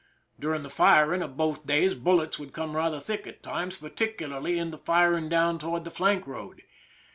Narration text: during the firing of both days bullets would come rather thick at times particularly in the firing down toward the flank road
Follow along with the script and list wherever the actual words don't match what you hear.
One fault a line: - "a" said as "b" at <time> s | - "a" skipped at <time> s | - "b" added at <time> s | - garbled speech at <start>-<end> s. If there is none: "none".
none